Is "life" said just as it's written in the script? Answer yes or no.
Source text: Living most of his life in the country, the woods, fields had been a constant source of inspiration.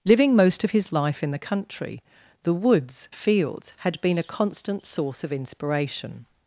yes